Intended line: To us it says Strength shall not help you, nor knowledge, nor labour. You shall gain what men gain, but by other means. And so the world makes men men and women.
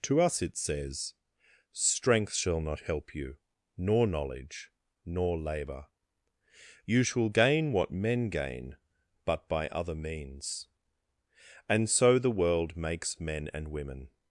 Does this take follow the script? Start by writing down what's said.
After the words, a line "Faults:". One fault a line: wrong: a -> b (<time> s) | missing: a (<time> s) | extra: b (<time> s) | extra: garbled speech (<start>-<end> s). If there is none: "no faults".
To us it says Strength shall not help you, nor knowledge, nor labour. You shall gain what men gain, but by other means. And so the world makes men and women.
Faults:
missing: men (13.5 s)